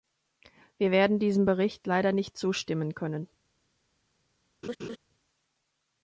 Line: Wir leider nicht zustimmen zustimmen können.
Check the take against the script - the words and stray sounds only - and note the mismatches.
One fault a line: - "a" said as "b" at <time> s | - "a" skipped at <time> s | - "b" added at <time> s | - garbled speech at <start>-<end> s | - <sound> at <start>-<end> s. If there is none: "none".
- "werden diesem Bericht" added at 0.9 s
- "zustimmen" skipped at 2.9 s
- laugh at 4.6-5.0 s